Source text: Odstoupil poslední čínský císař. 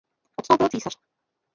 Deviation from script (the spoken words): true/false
true